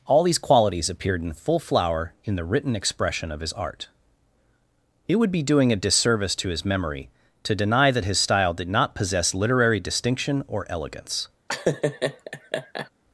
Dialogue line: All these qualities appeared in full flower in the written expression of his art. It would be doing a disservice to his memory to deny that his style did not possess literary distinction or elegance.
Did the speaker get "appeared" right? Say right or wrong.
right